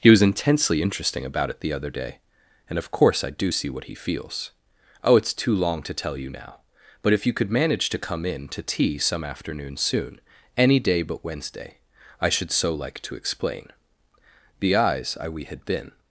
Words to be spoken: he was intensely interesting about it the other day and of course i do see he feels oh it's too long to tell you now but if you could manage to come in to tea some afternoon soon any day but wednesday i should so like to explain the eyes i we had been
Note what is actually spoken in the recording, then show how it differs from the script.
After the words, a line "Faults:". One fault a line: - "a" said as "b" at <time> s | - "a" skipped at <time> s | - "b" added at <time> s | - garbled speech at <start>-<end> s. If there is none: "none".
he was intensely interesting about it the other day and of course i do see what he feels oh it's too long to tell you now but if you could manage to come in to tea some afternoon soon any day but wednesday i should so like to explain the eyes i we had been
Faults:
- "what" added at 3.7 s